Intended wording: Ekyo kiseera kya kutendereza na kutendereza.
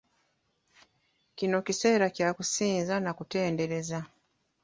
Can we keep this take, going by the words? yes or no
no